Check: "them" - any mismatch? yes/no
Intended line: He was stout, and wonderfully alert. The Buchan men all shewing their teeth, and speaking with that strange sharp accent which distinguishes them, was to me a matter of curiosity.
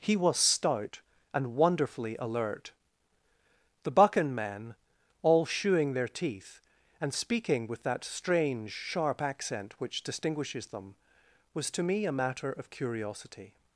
no